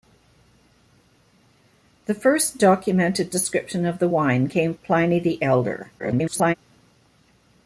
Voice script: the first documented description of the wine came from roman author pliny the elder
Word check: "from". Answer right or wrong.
wrong